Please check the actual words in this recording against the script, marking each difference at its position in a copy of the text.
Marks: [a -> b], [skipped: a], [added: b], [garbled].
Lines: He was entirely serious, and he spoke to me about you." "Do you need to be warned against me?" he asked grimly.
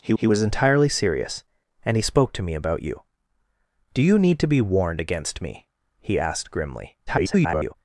He [added: he] was entirely serious, and he spoke to me about you." "Do you need to be warned against me?" he asked grimly. [garbled]